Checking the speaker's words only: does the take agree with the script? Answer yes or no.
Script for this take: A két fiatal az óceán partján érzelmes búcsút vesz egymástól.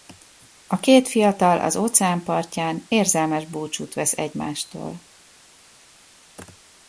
yes